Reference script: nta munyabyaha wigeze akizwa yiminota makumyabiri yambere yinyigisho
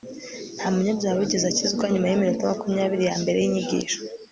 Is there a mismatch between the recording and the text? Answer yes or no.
yes